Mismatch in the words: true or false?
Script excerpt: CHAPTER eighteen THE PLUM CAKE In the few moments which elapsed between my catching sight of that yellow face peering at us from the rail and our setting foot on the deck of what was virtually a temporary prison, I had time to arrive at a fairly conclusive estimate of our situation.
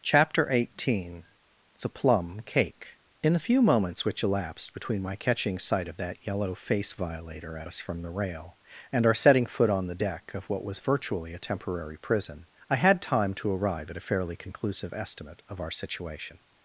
true